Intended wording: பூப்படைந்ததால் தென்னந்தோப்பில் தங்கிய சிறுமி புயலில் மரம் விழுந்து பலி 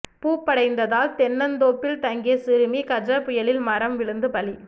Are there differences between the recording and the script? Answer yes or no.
yes